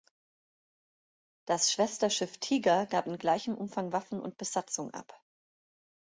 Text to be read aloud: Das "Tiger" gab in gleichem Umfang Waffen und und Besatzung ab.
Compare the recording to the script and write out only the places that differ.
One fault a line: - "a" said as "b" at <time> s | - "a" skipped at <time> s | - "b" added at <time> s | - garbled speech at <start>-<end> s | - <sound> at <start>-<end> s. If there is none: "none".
- "Schwesterschiff" added at 1.7 s
- "und" skipped at 4.4 s